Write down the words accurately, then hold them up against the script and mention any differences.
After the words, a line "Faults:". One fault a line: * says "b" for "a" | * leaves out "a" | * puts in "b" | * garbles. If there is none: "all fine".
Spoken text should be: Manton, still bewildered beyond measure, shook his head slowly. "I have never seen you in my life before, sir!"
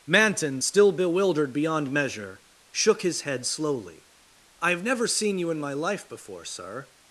Manton, still bewildered beyond measure, shook his head slowly. "I have never seen you in my life before, sir!"
Faults:
all fine